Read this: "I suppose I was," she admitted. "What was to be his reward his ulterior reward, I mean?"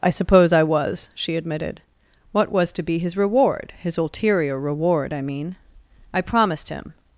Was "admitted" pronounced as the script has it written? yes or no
yes